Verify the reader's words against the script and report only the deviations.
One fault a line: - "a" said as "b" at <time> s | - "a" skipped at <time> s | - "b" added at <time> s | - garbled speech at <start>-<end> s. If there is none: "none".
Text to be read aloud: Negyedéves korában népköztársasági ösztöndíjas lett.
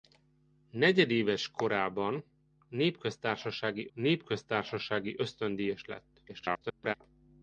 - "népköztársasági" added at 3.9 s
- garbled speech at 6.3-6.9 s